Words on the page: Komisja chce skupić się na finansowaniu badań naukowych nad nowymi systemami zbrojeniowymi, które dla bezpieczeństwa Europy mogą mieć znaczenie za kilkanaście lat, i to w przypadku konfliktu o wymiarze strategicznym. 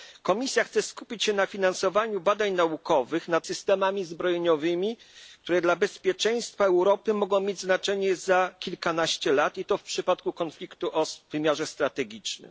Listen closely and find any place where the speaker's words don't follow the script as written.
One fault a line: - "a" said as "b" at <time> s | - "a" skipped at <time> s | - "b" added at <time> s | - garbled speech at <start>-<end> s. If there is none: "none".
- "nowymi" skipped at 3.5 s